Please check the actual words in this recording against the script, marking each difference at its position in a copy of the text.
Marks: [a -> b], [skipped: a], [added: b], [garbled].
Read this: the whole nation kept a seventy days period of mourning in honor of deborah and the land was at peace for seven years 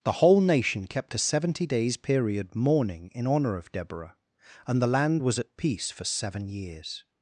the whole nation kept a seventy days period [skipped: of] mourning in honor of deborah and the land was at peace for seven years